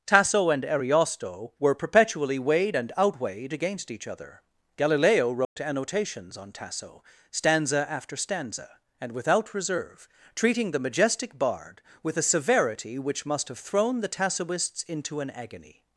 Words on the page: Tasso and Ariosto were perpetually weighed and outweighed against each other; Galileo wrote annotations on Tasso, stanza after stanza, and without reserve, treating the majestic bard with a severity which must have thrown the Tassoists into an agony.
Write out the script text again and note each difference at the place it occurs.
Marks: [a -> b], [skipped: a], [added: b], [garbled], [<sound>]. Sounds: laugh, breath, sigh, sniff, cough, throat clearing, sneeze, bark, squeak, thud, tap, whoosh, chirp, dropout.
Tasso and Ariosto were perpetually weighed and outweighed against each other; Galileo wrote [dropout] annotations on Tasso, stanza after stanza, and without reserve, treating the majestic bard with a severity which must have thrown the Tassoists into an agony.